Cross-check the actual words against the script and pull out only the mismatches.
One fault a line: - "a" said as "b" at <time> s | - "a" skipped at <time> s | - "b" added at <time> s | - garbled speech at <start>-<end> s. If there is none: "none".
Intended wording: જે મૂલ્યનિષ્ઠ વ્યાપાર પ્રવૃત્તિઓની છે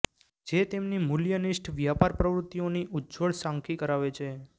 - "તેમની" added at 0.7 s
- "ઉજ્જવળ ઝાંખી કરાવે" added at 2.9 s